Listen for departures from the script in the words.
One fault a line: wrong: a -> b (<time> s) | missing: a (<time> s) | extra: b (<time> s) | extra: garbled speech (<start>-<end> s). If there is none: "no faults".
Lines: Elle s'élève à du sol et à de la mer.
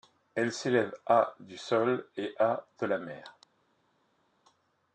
no faults